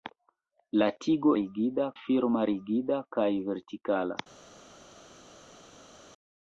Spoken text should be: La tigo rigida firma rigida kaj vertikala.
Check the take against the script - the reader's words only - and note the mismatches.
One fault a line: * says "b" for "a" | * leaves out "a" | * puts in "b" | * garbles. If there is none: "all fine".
all fine